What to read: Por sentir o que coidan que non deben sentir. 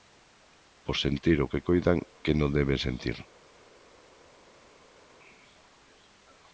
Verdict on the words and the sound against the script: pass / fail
pass